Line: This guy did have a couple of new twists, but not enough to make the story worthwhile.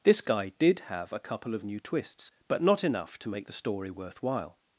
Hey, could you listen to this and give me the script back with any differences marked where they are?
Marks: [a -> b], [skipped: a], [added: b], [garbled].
This guy did have a couple of new twists, but not enough to make the story worthwhile.